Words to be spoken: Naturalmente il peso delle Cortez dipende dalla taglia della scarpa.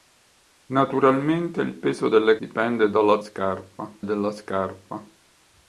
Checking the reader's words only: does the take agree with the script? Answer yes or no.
no